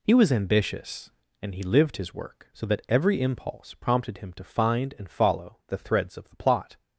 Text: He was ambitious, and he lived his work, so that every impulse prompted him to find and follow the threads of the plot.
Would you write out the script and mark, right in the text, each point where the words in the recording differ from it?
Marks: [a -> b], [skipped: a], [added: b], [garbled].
He was ambitious, and he lived his work, so that every impulse prompted him to find and follow the threads of the plot.